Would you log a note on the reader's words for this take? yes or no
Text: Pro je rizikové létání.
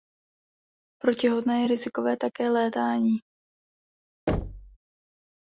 yes